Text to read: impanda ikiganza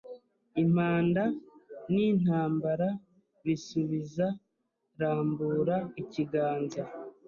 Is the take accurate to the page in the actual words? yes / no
no